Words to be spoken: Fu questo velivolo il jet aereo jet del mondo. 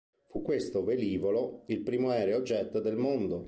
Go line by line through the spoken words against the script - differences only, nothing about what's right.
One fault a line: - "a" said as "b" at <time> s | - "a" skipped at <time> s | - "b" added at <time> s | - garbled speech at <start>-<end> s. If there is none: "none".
- "jet" said as "primo" at 1.8 s